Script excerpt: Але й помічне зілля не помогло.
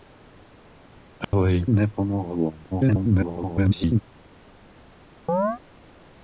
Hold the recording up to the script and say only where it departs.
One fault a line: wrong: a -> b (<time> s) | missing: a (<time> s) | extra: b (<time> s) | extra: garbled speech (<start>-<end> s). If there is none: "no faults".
missing: помічне зілля (1.6 s)
extra: garbled speech (2.7-4.0 s)